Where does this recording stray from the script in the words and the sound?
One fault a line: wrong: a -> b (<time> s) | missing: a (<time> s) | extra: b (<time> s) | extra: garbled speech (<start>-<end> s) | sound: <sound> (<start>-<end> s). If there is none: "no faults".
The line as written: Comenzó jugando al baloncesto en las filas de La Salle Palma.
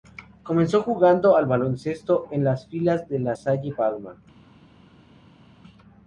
no faults